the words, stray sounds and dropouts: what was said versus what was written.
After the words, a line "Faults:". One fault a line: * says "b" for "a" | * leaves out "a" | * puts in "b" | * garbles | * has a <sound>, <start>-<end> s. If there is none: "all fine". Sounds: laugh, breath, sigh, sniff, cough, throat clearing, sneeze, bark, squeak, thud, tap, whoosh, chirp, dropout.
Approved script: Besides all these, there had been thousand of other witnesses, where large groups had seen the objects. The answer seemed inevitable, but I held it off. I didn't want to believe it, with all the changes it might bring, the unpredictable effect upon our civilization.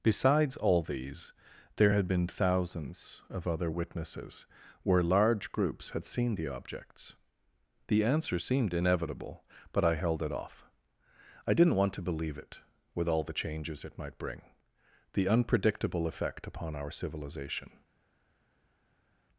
Besides all these, there had been thousands of other witnesses, where large groups had seen the objects. The answer seemed inevitable, but I held it off. I didn't want to believe it, with all the changes it might bring, the unpredictable effect upon our civilization.
Faults:
* says "thousands" for "thousand"